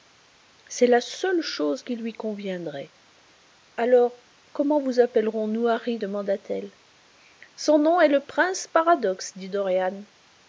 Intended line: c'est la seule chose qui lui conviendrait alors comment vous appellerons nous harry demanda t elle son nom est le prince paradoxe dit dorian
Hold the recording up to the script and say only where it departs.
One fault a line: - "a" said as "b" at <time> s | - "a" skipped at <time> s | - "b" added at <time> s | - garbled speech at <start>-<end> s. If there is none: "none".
none